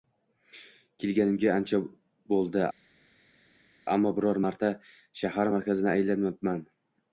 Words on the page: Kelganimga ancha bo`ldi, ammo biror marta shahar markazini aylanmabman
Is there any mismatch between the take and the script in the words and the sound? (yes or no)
no